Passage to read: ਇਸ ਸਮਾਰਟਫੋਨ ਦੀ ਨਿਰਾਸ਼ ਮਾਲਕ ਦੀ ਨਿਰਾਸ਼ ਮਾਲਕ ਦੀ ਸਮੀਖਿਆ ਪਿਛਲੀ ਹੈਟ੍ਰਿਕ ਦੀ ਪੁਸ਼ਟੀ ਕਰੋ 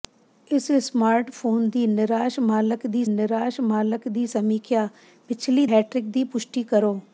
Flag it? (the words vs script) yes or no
no